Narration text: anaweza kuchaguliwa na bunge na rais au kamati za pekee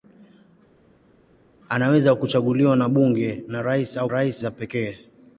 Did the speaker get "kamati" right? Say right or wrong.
wrong